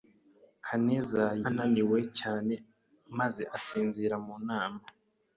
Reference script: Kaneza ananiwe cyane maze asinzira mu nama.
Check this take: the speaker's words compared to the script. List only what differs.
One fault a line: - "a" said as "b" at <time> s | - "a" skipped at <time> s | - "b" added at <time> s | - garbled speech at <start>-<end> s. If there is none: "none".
none